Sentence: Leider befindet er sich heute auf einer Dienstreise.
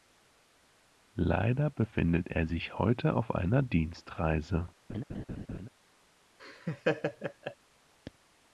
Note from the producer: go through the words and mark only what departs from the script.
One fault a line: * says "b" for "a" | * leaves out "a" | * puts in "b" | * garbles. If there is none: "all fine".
all fine